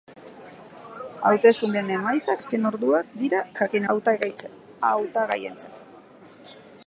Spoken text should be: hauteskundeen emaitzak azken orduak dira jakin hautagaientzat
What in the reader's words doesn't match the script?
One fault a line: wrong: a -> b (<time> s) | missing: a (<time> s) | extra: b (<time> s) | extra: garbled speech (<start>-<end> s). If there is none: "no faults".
no faults